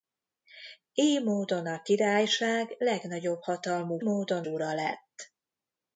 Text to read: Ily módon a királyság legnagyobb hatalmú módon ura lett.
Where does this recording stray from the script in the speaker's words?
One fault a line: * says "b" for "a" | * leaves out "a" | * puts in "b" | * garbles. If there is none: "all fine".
all fine